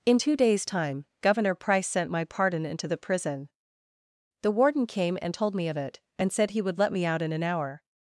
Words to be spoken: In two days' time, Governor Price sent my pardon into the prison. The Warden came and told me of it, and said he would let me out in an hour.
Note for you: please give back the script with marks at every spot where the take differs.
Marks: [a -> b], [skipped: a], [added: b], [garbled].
In two days' time, Governor Price sent my pardon into the prison. The Warden came and told me of it, and said he would let me out in an hour.